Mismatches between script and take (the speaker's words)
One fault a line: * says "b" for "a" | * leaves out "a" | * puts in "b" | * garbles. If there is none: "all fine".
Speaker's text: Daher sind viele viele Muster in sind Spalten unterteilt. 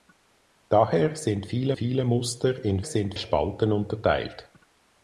all fine